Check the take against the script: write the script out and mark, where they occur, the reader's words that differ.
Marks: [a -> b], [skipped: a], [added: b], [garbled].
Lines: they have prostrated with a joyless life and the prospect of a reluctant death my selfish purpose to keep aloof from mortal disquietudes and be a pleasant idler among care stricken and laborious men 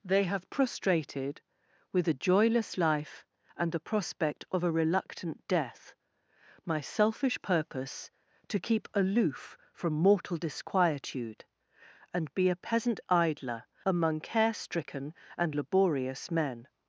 they have prostrated with a joyless life and the prospect of a reluctant death my selfish purpose to keep aloof from mortal [disquietudes -> disquietude] and be a [pleasant -> peasant] idler among care stricken and laborious men